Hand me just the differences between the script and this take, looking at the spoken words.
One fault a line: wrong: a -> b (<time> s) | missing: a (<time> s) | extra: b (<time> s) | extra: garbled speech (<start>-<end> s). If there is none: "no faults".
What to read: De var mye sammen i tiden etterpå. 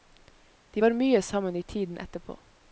no faults